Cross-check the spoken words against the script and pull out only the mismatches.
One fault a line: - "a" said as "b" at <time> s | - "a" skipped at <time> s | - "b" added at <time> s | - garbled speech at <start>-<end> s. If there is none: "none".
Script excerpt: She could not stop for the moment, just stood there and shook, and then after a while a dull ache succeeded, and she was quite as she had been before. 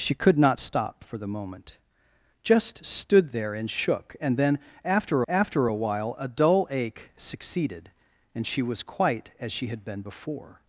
- "after" added at 5.3 s